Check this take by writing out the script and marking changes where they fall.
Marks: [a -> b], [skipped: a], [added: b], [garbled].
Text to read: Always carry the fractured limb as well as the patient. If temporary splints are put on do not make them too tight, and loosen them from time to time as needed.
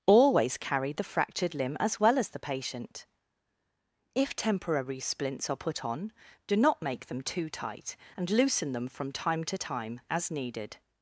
Always carry the fractured limb as well as the patient. If temporary splints are put on do not make them too tight, and loosen them from time to time as needed.